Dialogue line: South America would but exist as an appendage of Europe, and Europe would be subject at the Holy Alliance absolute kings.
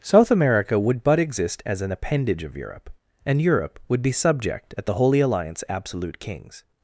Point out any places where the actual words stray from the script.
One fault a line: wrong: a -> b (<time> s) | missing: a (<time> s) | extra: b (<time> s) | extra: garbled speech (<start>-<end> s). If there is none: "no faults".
no faults